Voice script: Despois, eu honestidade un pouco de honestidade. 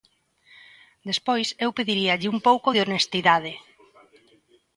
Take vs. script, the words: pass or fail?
fail